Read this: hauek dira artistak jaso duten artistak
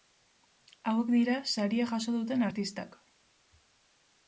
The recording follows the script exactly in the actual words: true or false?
false